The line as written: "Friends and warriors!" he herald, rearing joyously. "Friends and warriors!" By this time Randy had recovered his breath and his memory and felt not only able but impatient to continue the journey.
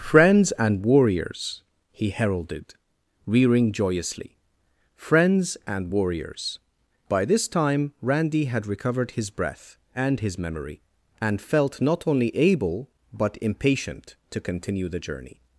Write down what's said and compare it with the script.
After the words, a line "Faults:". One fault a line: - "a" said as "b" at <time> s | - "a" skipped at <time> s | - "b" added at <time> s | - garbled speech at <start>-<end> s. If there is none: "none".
"Friends and warriors!" he heralded, rearing joyously. "Friends and warriors!" By this time Randy had recovered his breath and his memory and felt not only able but impatient to continue the journey.
Faults:
- "herald" said as "heralded" at 2.1 s